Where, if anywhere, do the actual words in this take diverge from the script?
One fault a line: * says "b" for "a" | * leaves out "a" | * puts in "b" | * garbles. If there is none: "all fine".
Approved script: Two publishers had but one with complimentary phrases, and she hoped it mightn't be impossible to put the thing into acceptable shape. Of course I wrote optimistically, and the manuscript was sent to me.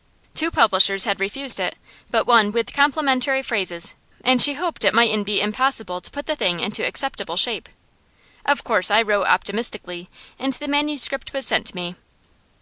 * puts in "refused it"